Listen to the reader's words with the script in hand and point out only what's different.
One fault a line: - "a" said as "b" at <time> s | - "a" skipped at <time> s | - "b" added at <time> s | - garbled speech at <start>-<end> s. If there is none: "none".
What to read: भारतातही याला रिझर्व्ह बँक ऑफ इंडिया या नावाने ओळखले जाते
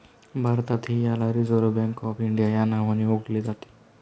none